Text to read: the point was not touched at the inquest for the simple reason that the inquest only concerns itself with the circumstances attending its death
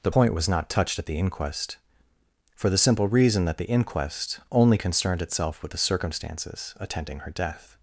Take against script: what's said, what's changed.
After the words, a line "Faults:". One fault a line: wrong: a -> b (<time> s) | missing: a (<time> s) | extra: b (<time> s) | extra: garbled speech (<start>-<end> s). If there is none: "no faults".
the point was not touched at the inquest for the simple reason that the inquest only concerned itself with the circumstances attending her death
Faults:
wrong: concerns -> concerned (4.7 s)
wrong: its -> her (7.2 s)